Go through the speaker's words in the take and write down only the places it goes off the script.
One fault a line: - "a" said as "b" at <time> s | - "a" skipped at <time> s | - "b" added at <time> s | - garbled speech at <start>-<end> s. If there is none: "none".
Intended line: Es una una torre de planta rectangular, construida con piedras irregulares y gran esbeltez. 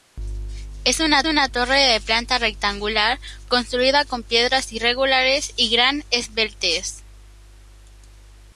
none